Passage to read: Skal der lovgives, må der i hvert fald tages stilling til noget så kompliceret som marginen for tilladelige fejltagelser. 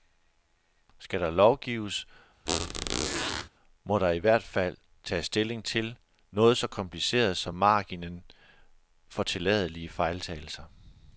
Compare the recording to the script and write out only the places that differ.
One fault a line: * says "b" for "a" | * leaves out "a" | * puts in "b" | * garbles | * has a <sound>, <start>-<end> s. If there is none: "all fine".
* has a squeak, 2.5-3.5 s